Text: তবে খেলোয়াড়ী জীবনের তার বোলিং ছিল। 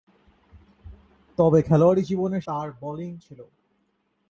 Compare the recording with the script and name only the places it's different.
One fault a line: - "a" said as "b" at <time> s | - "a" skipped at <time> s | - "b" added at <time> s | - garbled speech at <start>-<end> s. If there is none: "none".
none